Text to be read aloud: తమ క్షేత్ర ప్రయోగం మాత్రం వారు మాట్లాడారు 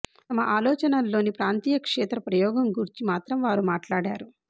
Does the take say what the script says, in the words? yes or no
no